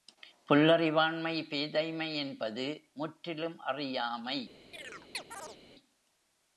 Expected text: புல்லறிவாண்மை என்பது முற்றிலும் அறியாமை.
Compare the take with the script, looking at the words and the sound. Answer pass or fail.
fail